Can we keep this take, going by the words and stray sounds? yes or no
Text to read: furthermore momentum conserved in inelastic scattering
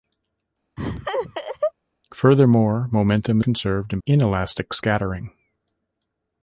no